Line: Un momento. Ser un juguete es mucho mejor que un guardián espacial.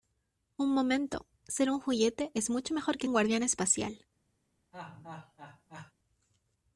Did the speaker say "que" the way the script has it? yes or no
yes